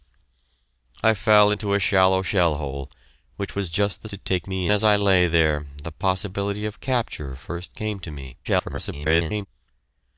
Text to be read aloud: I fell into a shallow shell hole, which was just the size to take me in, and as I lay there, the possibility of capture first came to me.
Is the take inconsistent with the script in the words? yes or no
yes